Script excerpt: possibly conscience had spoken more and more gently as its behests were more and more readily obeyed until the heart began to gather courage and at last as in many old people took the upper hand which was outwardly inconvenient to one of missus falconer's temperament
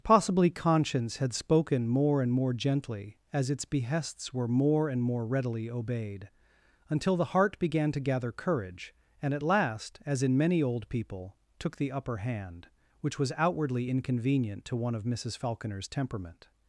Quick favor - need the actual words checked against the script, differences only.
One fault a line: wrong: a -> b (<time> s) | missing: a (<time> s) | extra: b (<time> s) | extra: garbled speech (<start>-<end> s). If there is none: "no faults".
no faults